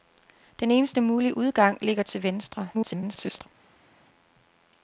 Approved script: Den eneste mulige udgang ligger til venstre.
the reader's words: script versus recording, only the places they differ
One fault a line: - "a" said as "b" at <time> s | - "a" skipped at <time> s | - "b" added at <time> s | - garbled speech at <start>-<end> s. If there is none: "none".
- garbled speech at 2.7-3.5 s